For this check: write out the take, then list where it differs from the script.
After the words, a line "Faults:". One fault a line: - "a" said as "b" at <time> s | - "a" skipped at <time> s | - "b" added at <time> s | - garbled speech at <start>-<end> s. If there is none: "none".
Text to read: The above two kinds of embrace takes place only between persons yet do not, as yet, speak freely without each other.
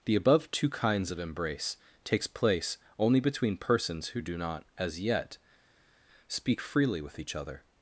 The above two kinds of embrace takes place only between persons who do not, as yet, speak freely with each other.
Faults:
- "yet" said as "who" at 4.1 s
- "without" said as "with" at 7.0 s